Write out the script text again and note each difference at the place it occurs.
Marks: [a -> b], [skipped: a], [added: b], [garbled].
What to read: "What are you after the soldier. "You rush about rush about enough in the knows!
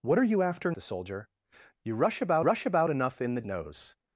"What are you after the soldier. "You rush about rush about enough in the knows!